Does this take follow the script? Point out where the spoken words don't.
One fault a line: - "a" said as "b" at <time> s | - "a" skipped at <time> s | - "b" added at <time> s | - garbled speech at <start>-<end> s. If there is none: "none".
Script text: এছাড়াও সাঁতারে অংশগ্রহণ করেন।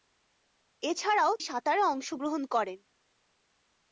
none